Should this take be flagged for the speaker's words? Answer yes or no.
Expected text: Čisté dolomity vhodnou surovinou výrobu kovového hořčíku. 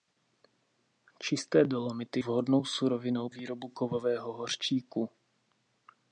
no